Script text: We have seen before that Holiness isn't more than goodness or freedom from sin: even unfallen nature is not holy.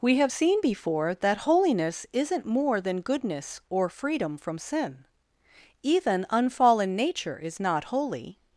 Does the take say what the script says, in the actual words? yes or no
yes